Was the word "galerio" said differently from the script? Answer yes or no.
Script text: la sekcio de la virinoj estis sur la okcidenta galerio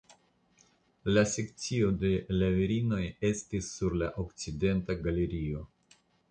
no